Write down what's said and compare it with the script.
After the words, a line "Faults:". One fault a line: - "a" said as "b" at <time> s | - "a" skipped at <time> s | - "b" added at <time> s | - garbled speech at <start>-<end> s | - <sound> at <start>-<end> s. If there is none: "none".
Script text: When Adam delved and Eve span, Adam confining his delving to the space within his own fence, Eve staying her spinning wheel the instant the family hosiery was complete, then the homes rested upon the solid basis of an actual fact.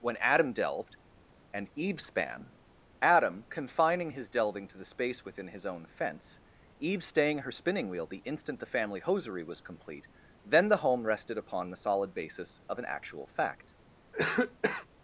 When Adam delved and Eve span, Adam confining his delving to the space within his own fence, Eve staying her spinning wheel the instant the family hosiery was complete, then the home rested upon the solid basis of an actual fact.
Faults:
- "homes" said as "home" at 10.8 s
- cough at 14.1-14.9 s